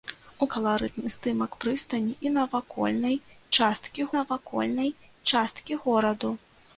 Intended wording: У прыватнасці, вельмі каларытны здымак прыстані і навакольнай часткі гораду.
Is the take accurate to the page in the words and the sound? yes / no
no